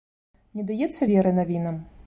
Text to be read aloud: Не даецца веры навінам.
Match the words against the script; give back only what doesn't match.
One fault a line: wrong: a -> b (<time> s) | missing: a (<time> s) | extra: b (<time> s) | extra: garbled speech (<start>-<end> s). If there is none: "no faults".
no faults